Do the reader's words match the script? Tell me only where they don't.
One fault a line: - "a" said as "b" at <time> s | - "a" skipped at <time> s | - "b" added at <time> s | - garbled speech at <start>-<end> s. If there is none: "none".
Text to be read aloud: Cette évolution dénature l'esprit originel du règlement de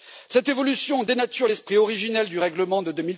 none